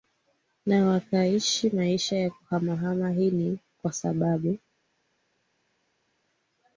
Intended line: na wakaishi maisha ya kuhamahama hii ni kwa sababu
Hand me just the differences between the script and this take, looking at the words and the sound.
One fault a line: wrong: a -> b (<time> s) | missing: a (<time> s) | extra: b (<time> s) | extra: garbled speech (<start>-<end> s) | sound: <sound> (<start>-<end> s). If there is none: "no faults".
no faults